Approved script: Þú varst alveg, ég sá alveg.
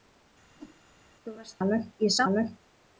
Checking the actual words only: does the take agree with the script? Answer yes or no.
yes